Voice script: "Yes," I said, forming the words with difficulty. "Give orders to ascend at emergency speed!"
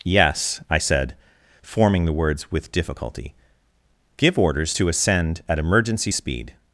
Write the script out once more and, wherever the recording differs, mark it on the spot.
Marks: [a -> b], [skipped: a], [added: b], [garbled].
"Yes," I said, forming the words with difficulty. "Give orders to ascend at emergency speed!"